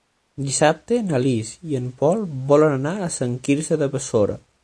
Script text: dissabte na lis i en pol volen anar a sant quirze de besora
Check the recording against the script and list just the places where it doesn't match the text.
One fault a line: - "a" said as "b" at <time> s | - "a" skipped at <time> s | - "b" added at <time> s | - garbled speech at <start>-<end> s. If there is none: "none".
none